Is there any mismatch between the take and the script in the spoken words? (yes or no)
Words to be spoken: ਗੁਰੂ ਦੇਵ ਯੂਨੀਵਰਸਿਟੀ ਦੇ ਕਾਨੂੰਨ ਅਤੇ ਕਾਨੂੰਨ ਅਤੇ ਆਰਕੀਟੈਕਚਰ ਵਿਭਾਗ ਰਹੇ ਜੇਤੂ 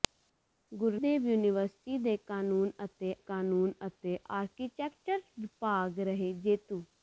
no